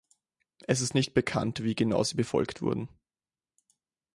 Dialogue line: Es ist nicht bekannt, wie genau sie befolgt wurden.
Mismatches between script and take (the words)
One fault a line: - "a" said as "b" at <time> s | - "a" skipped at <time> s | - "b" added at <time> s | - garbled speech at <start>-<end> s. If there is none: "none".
none